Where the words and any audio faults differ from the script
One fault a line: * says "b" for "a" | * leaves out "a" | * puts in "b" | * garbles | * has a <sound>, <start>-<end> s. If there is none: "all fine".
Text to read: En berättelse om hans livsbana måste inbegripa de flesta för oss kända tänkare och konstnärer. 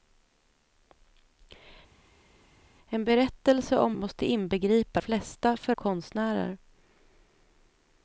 * leaves out "hans livsbana"
* leaves out "de"
* leaves out "oss kända tänkare"